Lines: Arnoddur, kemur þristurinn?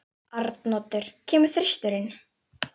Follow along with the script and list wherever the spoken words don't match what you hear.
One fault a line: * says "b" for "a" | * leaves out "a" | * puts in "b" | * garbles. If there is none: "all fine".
all fine